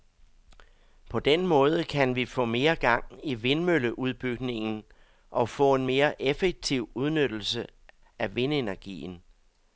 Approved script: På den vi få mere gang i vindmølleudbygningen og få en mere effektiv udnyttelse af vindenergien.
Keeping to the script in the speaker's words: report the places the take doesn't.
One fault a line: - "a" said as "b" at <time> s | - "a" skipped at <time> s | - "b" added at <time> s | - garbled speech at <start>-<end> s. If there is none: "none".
- "måde kan" added at 1.5 s